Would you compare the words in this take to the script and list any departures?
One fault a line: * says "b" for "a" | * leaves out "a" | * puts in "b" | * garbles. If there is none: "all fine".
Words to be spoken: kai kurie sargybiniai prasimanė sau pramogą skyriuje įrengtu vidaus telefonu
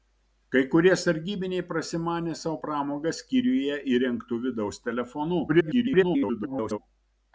* garbles